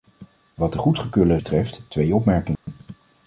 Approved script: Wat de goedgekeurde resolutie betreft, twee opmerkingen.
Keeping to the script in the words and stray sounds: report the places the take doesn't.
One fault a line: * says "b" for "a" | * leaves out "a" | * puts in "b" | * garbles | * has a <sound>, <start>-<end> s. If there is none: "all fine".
* leaves out "resolutie"
* has a dropout, 2.6-2.7 s